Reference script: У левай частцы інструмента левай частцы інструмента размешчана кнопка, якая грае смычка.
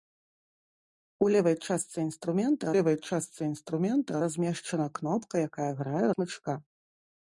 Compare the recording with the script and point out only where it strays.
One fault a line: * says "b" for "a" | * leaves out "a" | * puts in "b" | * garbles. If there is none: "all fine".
all fine